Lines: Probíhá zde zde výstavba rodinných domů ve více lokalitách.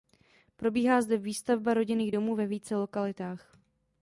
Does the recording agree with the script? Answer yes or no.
no